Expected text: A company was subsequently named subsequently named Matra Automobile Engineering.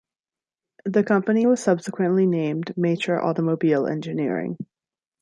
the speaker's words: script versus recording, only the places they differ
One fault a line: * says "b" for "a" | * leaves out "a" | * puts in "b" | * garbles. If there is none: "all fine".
* says "The" for "A"
* leaves out "subsequently named"